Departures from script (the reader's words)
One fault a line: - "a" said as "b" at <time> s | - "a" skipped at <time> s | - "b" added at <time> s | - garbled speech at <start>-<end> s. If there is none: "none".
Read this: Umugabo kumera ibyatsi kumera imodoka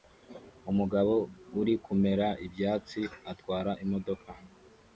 - "uri" added at 1.6 s
- "kumera" said as "atwara" at 3.3 s